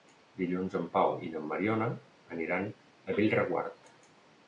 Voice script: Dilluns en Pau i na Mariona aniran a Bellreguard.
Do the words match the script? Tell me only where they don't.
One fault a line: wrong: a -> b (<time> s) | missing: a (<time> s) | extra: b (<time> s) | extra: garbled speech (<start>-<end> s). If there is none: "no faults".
no faults